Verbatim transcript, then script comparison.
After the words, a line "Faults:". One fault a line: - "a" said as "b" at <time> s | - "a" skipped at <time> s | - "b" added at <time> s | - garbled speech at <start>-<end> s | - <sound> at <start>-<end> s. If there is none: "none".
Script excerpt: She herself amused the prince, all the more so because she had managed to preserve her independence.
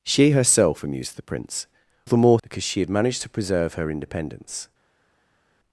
She herself amused the prince, the more because she had managed to preserve her independence.
Faults:
- "all" skipped at 1.7 s
- "so" skipped at 2.4 s